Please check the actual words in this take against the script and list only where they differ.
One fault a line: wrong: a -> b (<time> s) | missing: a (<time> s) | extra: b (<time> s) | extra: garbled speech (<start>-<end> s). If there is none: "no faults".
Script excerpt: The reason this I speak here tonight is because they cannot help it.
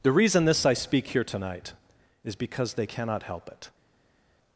no faults